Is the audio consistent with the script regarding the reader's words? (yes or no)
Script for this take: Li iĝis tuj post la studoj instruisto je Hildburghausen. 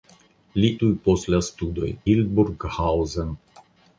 no